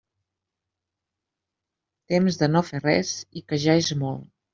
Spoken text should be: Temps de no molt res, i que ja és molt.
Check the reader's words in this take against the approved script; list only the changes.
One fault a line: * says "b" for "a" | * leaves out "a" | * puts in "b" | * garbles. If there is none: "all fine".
* says "fer" for "molt"